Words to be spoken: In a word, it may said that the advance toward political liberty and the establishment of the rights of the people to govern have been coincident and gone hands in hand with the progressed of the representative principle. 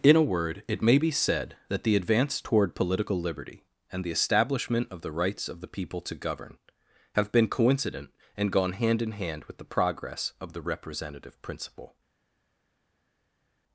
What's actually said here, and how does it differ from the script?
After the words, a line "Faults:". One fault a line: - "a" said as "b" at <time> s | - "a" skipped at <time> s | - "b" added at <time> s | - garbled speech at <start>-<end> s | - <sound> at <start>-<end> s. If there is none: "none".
In a word, it may be said that the advance toward political liberty and the establishment of the rights of the people to govern have been coincident and gone hand in hand with the progress of the representative principle.
Faults:
- "be" added at 1.0 s
- "hands" said as "hand" at 8.7 s
- "progressed" said as "progress" at 9.6 s